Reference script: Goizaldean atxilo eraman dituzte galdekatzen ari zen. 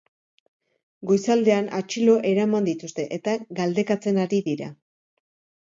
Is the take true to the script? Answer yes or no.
no